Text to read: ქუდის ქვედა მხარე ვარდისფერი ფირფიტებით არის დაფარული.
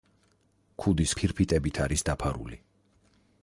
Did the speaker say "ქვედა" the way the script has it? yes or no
no